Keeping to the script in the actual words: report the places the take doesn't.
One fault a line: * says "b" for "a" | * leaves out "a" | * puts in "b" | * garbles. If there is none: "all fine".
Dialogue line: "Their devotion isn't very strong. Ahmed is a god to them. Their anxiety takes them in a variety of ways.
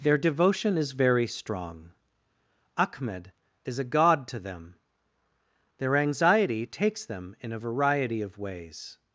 * says "is" for "isn't"